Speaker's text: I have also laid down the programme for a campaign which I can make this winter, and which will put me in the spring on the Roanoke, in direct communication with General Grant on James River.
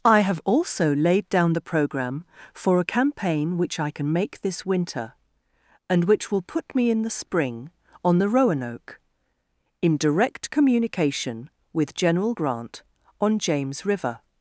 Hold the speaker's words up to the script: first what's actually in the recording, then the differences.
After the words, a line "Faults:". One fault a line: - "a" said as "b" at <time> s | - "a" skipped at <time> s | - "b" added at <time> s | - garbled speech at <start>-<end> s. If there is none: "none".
I have also laid down the programme for a campaign which I can make this winter, and which will put me in the spring on the Roanoke, in direct communication with General Grant on James River.
Faults:
none